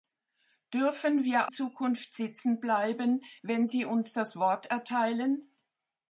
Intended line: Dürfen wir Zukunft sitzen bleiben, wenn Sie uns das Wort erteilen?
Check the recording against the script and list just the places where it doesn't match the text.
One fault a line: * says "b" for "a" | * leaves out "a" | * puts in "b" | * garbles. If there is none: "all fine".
all fine